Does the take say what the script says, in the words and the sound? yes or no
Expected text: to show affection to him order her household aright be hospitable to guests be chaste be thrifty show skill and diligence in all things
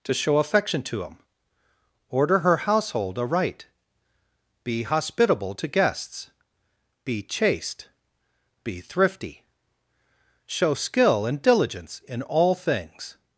yes